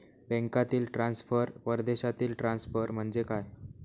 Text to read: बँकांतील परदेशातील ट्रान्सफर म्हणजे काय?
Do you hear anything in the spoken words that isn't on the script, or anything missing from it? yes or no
yes